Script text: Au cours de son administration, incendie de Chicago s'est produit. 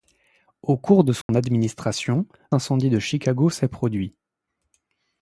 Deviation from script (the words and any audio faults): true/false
true